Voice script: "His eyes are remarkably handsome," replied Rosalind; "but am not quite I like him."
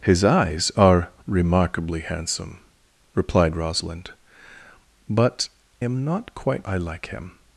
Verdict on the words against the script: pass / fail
pass